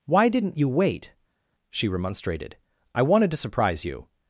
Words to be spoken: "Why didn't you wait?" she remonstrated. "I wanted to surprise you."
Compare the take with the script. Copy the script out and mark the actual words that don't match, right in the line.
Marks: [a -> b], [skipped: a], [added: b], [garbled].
"Why didn't you wait?" she remonstrated. "I wanted to surprise you."